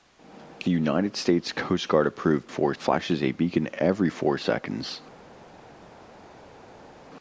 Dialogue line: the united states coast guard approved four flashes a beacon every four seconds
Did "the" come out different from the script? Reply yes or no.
no